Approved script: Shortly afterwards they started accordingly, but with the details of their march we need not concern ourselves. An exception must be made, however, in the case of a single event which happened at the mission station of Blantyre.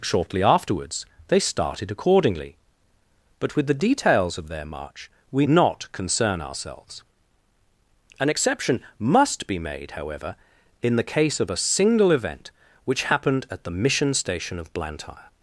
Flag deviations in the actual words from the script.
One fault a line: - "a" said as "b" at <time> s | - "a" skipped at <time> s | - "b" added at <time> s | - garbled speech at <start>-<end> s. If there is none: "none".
- "need" skipped at 5.5 s